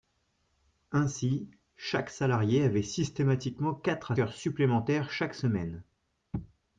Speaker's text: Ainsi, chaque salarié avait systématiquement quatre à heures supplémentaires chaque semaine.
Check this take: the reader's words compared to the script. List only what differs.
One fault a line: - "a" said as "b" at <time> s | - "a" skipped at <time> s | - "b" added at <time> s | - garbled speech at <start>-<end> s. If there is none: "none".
none